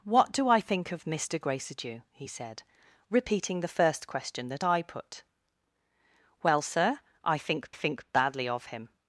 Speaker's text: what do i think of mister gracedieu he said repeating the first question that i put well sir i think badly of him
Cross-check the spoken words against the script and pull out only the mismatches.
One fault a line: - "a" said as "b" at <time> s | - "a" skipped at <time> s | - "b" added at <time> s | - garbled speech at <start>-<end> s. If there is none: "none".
- "think" added at 7.7 s